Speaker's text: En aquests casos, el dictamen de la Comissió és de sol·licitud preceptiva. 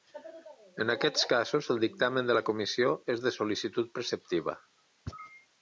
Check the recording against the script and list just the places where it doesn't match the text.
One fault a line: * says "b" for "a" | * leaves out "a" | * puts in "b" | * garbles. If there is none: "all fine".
all fine